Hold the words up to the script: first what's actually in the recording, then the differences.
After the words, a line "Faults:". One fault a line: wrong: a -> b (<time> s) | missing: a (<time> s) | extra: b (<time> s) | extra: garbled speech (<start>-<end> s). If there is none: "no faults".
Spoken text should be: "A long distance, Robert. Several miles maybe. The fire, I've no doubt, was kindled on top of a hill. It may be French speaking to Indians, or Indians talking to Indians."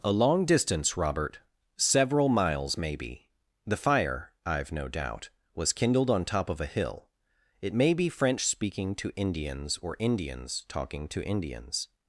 "A long distance, Robert. Several miles maybe. The fire, I've no doubt, was kindled on top of a hill. It may be French speaking to Indians, or Indians talking to Indians."
Faults:
no faults